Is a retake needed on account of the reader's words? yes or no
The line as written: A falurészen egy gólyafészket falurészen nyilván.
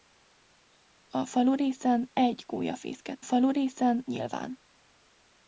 no